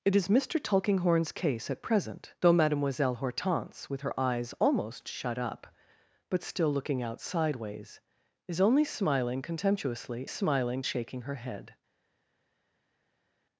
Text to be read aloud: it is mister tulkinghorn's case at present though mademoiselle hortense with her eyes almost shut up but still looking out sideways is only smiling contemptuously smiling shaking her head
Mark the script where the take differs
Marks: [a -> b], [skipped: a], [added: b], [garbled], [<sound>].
it is mister tulkinghorn's case at present though mademoiselle hortense with her eyes almost shut up but still looking out sideways is only smiling contemptuously smiling shaking her head